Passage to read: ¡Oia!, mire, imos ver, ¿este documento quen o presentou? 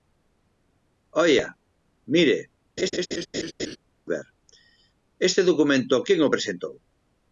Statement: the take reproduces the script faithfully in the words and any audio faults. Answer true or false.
false